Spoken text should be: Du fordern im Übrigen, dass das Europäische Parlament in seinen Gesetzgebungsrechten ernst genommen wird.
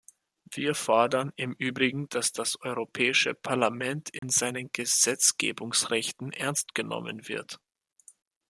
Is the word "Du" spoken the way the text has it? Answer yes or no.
no